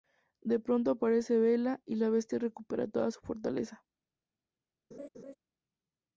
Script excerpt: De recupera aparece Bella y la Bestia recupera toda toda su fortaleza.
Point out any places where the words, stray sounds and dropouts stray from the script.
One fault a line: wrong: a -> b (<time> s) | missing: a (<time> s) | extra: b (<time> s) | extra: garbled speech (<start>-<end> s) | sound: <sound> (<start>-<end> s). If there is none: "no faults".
wrong: recupera -> pronto (0.6 s)
missing: toda (3.1 s)
sound: laugh (4.9-5.4 s)